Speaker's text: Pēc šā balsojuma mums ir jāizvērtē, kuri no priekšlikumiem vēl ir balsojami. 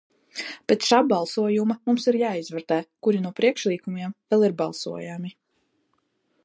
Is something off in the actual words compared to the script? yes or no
no